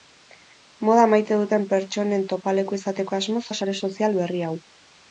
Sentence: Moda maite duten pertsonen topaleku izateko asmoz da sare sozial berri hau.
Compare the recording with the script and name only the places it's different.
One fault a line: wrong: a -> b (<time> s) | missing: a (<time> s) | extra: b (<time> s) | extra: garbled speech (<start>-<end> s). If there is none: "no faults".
no faults